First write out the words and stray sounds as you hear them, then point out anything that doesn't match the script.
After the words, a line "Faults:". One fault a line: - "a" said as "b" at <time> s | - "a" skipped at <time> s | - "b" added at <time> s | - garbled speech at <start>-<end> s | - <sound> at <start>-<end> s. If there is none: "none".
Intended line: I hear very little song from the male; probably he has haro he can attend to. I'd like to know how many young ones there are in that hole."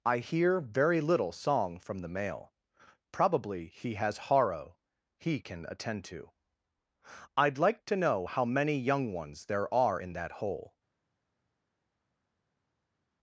I hear very little song from the male; probably he has haro he can attend to. I'd like to know how many young ones there are in that hole."
Faults:
none